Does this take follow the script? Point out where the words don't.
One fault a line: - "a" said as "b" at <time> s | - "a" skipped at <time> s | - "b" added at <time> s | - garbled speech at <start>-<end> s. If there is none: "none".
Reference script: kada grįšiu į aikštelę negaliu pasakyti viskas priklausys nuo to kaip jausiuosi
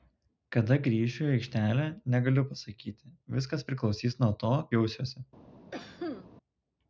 - "kaip" skipped at 4.5 s